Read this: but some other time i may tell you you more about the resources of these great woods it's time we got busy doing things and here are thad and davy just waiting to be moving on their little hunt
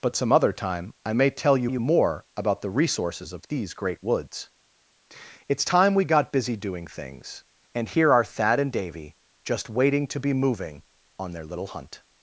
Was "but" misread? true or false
false